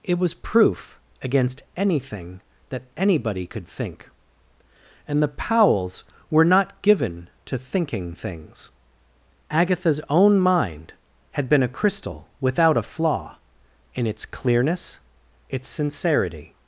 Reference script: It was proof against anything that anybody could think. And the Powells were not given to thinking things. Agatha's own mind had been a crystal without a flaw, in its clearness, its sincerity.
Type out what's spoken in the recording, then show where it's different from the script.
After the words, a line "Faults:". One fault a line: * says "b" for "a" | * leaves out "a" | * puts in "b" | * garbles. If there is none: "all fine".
It was proof against anything that anybody could think. And the Powells were not given to thinking things. Agatha's own mind had been a crystal without a flaw, in its clearness, its sincerity.
Faults:
all fine